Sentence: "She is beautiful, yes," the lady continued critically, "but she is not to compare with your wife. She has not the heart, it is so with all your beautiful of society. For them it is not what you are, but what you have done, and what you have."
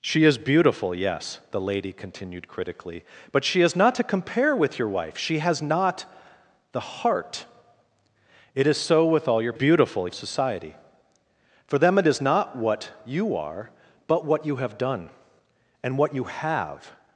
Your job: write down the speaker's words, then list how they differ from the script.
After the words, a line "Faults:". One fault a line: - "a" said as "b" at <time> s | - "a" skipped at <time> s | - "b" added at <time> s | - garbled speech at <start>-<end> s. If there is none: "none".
"She is beautiful, yes," the lady continued critically, "but she is not to compare with your wife. She has not the heart, it is so with all your beautiful of society. For them it is not what you are, but what you have done, and what you have."
Faults:
none